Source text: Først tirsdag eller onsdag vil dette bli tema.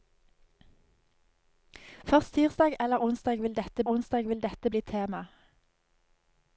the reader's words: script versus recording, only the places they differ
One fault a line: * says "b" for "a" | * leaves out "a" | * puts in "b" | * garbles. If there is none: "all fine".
* puts in "onsdag vil dette"